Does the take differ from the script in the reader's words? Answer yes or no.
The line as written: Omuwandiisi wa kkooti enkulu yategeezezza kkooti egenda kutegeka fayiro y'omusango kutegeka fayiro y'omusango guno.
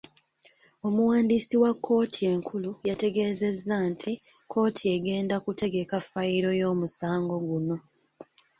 yes